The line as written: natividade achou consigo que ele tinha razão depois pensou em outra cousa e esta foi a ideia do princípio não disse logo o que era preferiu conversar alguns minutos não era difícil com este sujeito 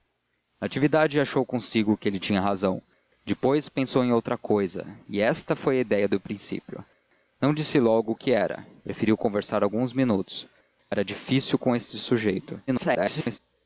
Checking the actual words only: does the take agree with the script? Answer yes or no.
no